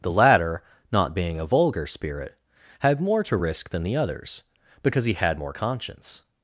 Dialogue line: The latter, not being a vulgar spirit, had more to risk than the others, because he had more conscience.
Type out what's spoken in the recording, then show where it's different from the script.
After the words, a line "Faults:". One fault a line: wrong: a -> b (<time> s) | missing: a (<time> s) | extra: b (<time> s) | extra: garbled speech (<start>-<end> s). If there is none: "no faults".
The latter, not being a vulgar spirit, had more to risk than the others, because he had more conscience.
Faults:
no faults